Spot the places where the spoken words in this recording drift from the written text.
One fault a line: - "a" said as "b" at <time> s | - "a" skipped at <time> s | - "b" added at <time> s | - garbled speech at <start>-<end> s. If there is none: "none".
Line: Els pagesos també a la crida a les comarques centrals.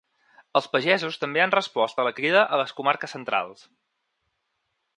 - "han respost" added at 1.4 s